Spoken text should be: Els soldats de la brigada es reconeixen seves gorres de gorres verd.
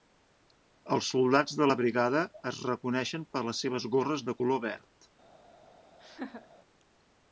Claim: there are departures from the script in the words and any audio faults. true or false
true